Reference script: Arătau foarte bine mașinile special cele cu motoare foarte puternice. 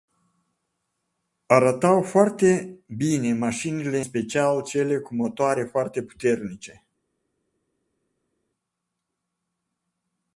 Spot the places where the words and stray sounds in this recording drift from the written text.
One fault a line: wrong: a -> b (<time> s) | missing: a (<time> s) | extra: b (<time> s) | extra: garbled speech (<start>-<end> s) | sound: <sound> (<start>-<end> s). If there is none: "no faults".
no faults